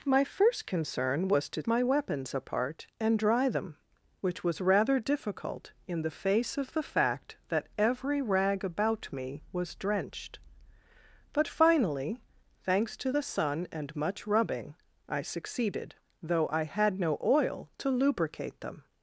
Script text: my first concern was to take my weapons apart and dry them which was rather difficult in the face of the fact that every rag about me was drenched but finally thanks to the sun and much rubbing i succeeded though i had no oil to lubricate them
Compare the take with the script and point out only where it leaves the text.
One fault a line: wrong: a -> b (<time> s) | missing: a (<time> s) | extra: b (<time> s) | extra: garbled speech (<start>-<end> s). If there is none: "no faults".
missing: take (1.6 s)